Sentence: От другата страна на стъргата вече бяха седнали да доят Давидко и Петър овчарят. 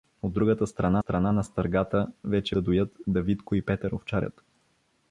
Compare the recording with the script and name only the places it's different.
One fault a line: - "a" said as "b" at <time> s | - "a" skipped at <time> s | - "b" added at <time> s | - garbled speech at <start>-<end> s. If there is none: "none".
- "страна" added at 1.0 s
- "бяха седнали" skipped at 2.6 s